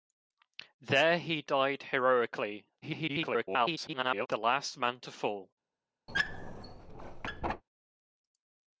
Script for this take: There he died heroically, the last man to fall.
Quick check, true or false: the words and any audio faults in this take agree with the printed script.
false